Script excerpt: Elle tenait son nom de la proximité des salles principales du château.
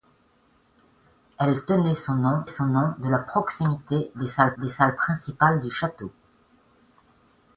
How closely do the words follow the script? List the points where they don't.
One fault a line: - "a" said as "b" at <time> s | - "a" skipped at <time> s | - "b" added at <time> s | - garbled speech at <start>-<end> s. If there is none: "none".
- "son nom" added at 2.4 s
- "des salles" added at 4.6 s